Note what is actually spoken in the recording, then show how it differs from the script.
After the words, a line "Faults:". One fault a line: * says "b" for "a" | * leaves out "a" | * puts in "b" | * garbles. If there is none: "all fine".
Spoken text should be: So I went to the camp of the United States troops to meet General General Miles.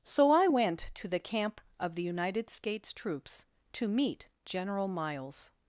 So I went to the camp of the United States troops to meet General Miles.
Faults:
* leaves out "General"